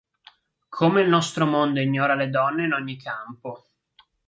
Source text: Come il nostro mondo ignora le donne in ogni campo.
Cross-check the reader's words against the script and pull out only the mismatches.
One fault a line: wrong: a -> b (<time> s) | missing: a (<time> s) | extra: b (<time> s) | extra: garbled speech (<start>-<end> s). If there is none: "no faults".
no faults